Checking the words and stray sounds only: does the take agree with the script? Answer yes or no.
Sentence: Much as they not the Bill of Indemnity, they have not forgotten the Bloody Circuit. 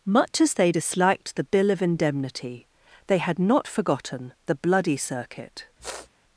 no